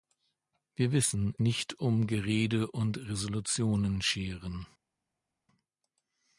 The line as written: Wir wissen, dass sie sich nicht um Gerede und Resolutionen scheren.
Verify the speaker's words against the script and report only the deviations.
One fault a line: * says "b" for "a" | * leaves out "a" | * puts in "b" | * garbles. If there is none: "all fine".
* leaves out "dass sie sich"